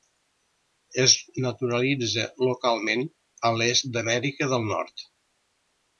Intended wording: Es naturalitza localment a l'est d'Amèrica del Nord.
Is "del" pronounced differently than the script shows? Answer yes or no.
no